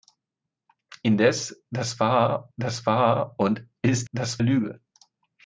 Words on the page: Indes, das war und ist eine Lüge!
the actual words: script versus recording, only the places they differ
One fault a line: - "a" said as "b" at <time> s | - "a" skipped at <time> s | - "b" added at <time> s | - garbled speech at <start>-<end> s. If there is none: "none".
- "das war" added at 2.6 s
- "eine" said as "das" at 4.1 s